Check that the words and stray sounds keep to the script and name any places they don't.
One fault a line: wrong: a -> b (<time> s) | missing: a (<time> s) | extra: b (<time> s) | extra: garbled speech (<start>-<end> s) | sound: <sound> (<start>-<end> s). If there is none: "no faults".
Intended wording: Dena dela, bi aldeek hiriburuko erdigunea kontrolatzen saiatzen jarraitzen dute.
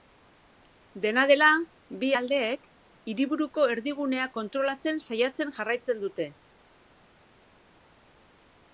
no faults